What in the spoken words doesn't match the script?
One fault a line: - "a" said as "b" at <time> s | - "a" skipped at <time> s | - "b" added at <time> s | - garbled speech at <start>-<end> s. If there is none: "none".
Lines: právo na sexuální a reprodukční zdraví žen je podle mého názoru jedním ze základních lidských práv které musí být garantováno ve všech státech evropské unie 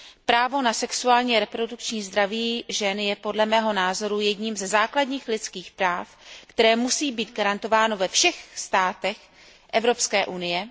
none